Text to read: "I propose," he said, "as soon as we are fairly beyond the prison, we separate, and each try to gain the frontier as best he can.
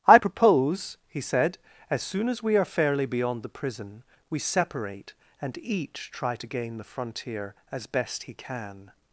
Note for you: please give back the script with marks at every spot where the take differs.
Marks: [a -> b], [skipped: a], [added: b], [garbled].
"I propose," he said, "as soon as we are fairly beyond the prison, we separate, and each try to gain the frontier as best he can.